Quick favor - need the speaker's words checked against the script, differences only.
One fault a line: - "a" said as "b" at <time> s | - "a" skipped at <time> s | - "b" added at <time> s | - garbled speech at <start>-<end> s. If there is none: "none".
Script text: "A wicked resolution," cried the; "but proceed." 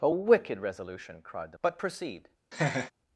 none